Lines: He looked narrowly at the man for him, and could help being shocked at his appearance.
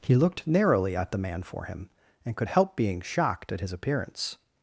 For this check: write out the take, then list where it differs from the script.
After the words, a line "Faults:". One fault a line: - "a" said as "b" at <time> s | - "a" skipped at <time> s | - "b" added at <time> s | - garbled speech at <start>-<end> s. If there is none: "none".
He looked narrowly at the man for him, and could help being shocked at his appearance.
Faults:
none